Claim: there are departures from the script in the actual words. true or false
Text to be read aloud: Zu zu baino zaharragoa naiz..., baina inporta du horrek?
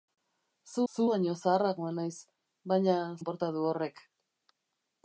false